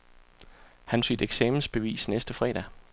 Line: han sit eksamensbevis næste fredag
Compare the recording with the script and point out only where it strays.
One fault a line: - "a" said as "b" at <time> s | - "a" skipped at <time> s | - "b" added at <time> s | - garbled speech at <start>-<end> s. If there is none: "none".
none